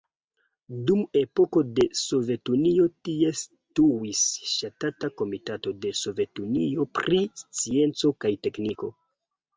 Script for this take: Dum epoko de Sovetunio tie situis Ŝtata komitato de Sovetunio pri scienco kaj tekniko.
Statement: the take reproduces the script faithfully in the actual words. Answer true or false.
true